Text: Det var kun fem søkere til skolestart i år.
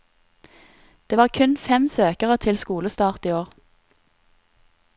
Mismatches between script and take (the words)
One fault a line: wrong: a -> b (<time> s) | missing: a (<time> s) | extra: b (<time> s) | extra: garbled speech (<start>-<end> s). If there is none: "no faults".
no faults